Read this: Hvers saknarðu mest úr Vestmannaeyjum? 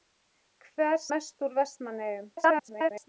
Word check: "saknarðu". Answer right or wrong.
wrong